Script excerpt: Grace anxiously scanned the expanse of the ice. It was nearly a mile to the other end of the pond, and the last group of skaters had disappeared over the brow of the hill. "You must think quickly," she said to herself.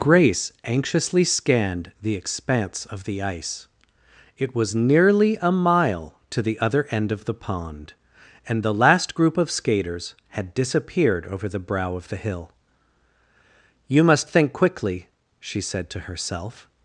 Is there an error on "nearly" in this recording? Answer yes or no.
no